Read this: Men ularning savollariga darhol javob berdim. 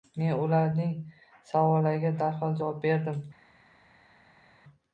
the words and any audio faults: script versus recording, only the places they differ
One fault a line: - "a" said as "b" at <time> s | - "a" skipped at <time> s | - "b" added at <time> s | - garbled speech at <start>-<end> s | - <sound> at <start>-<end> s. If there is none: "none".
none